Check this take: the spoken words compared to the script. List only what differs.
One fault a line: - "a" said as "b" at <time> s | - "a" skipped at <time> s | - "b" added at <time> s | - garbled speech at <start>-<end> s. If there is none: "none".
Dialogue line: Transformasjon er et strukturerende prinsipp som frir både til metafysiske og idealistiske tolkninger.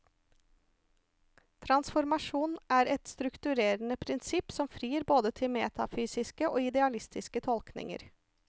none